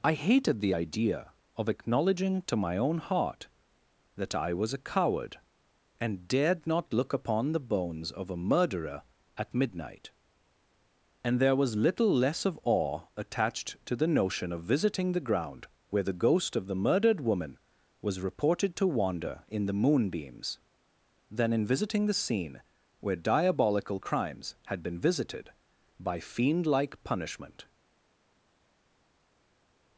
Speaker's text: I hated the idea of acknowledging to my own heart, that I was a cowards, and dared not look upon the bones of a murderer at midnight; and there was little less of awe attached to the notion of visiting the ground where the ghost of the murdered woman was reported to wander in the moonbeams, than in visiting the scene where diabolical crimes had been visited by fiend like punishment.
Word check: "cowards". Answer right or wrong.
wrong